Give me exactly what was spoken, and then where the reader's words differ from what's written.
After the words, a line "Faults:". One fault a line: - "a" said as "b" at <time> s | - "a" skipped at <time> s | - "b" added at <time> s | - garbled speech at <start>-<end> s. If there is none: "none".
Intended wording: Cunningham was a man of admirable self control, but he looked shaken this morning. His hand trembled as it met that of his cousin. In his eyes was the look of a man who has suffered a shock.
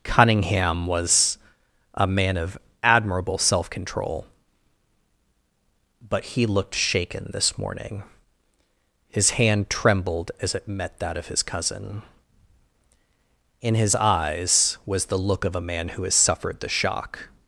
Cunningham was a man of admirable self control, but he looked shaken this morning. His hand trembled as it met that of his cousin. In his eyes was the look of a man who has suffered the shock.
Faults:
- "a" said as "the" at 16.6 s